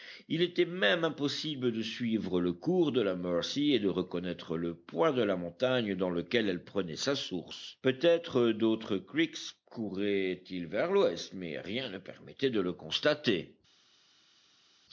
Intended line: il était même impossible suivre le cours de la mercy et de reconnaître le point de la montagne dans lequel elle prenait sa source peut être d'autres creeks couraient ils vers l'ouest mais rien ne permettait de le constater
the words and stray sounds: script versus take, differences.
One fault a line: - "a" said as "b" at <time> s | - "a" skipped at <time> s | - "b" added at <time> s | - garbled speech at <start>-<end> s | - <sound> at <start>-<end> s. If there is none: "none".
- "de" added at 1.7 s